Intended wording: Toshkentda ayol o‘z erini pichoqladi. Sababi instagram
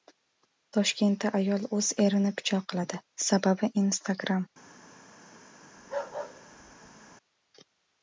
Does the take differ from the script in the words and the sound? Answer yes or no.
yes